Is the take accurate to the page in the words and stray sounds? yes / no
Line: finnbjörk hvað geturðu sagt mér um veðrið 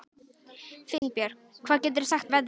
no